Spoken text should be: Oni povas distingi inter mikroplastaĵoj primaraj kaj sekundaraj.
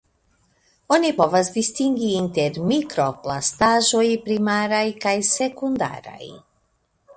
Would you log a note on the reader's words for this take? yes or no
no